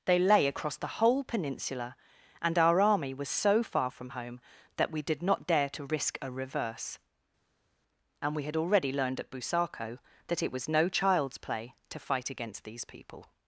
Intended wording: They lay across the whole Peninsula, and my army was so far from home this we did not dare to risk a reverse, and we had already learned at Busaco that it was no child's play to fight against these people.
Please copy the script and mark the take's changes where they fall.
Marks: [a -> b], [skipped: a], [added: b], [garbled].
They lay across the whole Peninsula, and [my -> our] army was so far from home [this -> that] we did not dare to risk a reverse, and we had already learned at Busaco that it was no child's play to fight against these people.